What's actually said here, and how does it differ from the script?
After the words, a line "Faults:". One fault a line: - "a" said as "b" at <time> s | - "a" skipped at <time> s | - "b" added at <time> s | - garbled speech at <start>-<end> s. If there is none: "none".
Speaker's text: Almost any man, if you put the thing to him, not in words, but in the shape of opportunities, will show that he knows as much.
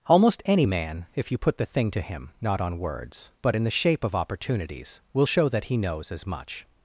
Almost any man, if you put the thing to him, not on words, but in the shape of opportunities, will show that he knows as much.
Faults:
- "in" said as "on" at 2.6 s